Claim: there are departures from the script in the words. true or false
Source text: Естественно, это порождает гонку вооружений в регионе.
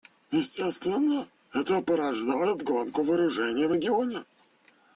false